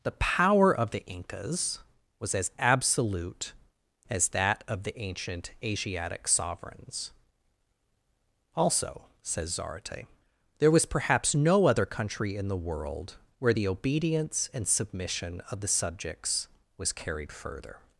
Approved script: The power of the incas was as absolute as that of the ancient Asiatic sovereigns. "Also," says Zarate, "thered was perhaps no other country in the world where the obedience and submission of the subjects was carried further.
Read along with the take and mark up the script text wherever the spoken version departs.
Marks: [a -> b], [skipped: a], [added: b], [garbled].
The power of the incas was as absolute as that of the ancient Asiatic sovereigns. "Also," says Zarate, ["thered -> there] was perhaps no other country in the world where the obedience and submission of the subjects was carried further.